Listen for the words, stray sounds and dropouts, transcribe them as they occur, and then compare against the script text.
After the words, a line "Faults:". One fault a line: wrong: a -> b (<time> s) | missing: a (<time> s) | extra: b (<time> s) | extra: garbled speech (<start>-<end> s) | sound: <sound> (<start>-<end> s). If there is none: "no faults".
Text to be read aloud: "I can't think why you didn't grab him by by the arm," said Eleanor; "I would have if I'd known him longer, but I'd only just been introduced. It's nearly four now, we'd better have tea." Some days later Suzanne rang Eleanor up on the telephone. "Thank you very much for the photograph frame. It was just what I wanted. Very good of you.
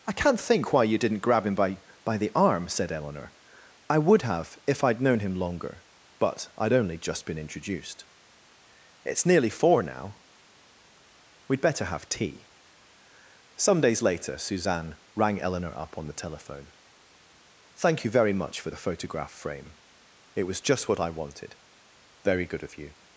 "I can't think why you didn't grab him by by the arm," said Eleanor; "I would have if I'd known him longer, but I'd only just been introduced. It's nearly four now, we'd better have tea." Some days later Suzanne rang Eleanor up on the telephone. "Thank you very much for the photograph frame. It was just what I wanted. Very good of you.
Faults:
no faults